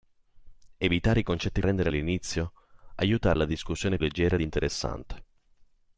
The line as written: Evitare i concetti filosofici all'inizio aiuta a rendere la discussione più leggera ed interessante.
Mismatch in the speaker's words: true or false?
true